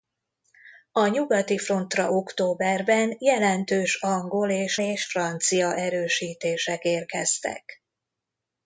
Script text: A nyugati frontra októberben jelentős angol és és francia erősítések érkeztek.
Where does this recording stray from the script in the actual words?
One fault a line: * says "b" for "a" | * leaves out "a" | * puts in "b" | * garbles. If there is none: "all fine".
all fine